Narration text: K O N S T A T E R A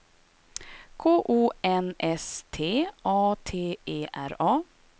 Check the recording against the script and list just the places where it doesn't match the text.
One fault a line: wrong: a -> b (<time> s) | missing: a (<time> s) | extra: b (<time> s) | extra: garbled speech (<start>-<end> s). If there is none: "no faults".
no faults